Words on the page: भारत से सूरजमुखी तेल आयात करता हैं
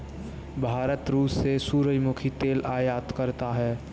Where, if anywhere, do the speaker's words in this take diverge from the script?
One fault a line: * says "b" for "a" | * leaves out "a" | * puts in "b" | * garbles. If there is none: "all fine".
* puts in "रूस"